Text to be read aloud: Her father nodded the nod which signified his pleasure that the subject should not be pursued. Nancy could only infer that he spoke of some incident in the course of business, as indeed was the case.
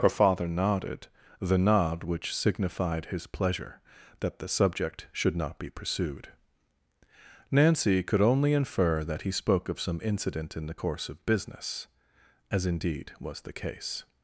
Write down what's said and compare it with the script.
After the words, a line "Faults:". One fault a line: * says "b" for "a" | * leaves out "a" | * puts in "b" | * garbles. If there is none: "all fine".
Her father nodded the nod which signified his pleasure that the subject should not be pursued. Nancy could only infer that he spoke of some incident in the course of business, as indeed was the case.
Faults:
all fine